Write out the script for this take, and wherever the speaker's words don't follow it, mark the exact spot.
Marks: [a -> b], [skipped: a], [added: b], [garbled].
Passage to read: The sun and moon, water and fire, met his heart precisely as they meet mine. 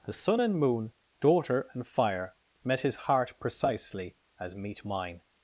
The sun and moon, [water -> daughter] and fire, met his heart precisely as [skipped: they] meet mine.